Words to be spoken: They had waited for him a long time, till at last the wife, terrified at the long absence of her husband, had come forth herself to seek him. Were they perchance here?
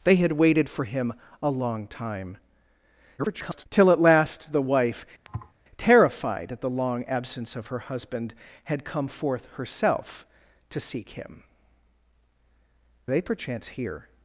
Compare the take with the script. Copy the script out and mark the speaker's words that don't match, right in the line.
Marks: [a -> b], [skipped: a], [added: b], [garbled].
They had waited for him a long time, [garbled] till at last the wife, terrified at the long absence of her husband, had come forth herself to seek him. [skipped: Were] they perchance here?